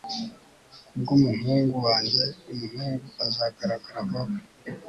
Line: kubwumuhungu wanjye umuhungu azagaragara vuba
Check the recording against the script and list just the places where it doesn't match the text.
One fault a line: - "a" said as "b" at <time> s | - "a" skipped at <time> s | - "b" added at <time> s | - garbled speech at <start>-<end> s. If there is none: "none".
none